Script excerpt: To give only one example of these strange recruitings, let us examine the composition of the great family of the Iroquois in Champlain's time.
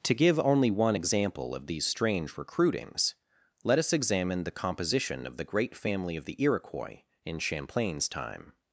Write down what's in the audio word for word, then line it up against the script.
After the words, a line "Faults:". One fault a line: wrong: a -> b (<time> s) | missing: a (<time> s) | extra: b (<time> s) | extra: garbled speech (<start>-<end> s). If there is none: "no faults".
To give only one example of these strange recruitings, let us examine the composition of the great family of the Iroquois in Champlain's time.
Faults:
no faults